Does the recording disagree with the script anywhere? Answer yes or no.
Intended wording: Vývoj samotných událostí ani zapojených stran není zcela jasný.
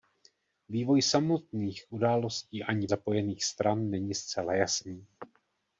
no